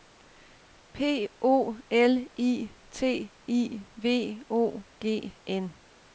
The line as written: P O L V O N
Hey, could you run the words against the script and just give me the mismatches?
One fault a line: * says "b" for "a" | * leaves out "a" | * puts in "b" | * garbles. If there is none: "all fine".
* puts in "I T I"
* puts in "G"